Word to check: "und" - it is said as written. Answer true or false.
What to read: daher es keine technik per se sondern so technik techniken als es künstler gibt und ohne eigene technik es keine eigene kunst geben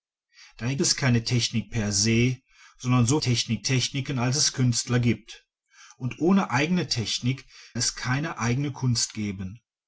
true